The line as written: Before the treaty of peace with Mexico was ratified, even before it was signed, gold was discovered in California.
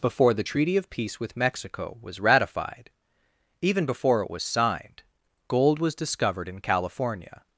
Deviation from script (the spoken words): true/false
false